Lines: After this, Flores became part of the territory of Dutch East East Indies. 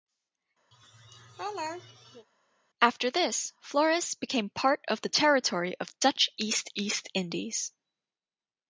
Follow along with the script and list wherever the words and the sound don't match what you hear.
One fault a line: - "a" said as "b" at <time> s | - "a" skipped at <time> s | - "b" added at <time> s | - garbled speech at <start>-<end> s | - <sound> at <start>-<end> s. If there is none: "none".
- laugh at 0.7-2.3 s